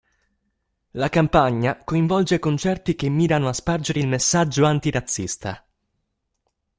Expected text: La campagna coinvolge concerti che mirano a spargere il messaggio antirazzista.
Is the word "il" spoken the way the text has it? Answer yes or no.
yes